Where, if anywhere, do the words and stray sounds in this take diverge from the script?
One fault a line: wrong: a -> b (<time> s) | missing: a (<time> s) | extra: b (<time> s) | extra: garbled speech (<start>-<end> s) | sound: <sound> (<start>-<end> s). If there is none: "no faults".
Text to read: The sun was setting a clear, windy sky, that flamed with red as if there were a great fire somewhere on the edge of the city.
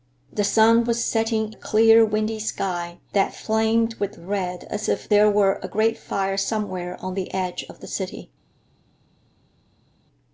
no faults